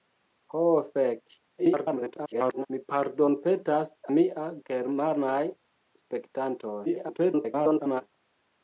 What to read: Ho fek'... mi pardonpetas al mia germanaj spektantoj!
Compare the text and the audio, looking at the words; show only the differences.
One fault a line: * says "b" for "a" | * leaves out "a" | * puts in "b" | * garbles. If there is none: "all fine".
* garbles
* leaves out "al"
* garbles